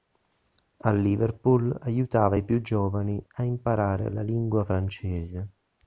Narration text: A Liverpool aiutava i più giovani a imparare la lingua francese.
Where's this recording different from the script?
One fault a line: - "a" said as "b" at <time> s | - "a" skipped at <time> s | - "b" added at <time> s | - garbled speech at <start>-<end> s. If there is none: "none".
none